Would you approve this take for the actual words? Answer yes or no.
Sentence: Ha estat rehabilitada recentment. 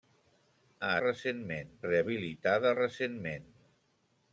no